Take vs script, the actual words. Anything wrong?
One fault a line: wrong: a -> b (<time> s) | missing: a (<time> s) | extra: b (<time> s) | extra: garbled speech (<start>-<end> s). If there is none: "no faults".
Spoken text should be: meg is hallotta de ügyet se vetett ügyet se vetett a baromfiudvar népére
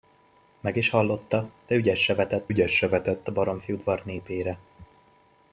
no faults